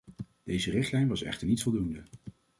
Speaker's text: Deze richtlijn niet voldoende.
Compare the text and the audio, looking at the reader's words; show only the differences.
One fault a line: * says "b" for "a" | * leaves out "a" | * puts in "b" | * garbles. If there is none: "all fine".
* puts in "was echter"